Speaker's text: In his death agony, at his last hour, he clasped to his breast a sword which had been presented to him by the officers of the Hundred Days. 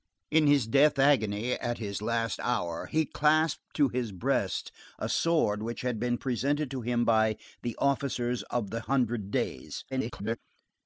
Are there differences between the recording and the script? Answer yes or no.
yes